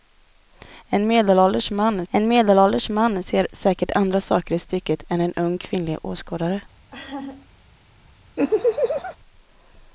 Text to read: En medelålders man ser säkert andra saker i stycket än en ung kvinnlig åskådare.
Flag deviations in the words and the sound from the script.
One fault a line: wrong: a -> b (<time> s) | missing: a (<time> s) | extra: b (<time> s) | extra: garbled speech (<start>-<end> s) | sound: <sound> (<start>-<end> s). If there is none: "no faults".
extra: en medelålders man (2.1 s)
sound: laugh (6.9-7.5 s)
sound: laugh (8.4-9.2 s)